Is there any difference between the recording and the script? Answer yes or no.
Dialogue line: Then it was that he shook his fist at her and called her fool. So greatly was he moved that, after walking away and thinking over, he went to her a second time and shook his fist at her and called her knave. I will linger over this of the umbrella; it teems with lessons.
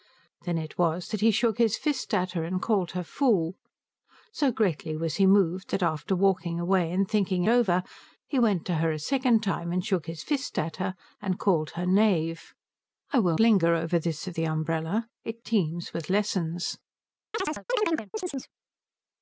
no